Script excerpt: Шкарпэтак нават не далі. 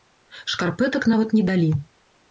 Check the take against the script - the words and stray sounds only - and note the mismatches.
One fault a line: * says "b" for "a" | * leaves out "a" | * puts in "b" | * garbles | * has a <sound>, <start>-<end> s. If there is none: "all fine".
all fine